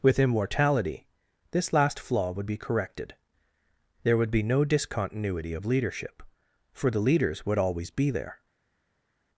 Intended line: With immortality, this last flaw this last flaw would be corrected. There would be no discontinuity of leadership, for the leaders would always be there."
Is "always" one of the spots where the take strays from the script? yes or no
no